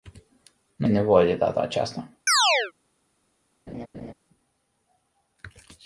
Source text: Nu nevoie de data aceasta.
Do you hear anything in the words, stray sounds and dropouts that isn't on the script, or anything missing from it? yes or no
yes